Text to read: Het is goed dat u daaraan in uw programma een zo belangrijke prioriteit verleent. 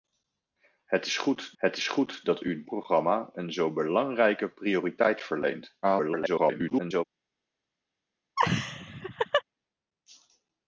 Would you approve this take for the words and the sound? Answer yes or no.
no